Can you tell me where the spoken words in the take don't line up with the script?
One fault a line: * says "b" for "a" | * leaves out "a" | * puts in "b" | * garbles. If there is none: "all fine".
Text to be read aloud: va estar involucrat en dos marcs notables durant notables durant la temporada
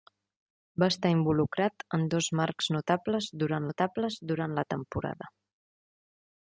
all fine